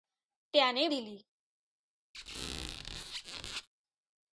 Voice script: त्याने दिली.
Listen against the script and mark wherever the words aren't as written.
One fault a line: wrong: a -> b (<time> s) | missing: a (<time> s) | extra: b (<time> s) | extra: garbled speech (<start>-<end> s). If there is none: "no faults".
no faults